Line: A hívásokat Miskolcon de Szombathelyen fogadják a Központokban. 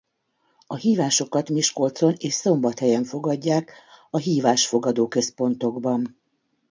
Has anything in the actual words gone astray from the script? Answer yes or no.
yes